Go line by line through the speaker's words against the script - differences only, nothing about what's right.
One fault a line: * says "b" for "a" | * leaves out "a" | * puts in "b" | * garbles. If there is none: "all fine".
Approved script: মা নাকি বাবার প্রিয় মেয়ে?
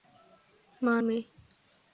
* leaves out "নাকি বাবার প্রিয়"